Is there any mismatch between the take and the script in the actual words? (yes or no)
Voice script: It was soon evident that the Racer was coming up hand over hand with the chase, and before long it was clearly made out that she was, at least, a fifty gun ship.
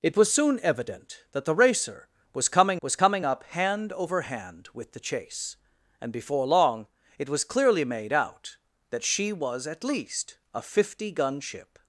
yes